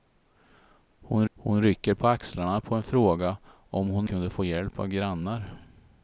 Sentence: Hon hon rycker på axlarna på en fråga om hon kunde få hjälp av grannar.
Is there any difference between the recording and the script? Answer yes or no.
no